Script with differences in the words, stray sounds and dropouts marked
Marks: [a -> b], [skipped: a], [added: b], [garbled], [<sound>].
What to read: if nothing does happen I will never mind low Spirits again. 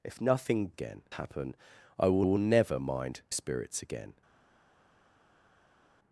if nothing [does -> again] happen I will [added: will] never mind [skipped: low] Spirits again.